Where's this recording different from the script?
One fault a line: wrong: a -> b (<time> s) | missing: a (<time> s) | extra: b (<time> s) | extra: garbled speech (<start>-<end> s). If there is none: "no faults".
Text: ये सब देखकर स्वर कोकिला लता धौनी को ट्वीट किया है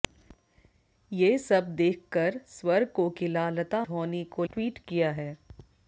no faults